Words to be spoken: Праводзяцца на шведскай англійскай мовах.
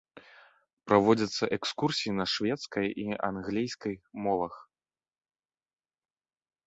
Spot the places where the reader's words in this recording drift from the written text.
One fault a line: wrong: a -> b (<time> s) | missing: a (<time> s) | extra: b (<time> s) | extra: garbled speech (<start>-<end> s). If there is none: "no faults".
extra: экскурсіі (1.6 s)
extra: і (3.1 s)